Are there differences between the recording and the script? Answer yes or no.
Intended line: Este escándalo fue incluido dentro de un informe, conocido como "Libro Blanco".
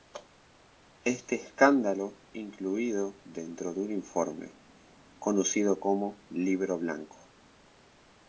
yes